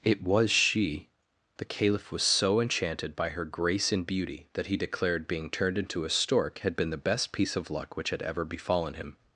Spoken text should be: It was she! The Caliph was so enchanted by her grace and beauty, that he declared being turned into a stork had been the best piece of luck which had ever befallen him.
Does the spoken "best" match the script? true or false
true